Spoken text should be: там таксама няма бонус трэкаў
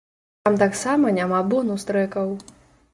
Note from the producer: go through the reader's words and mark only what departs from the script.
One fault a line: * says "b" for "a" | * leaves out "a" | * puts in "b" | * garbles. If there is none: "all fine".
all fine